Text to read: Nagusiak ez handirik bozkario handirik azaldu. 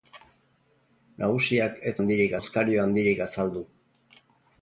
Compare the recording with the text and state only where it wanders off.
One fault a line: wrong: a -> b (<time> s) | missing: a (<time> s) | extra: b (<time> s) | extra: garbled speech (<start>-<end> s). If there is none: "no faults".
no faults